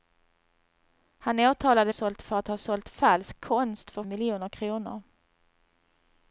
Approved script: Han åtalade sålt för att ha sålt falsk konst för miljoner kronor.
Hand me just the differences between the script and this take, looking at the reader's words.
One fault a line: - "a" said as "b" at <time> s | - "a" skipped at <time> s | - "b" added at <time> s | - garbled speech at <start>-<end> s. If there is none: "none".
none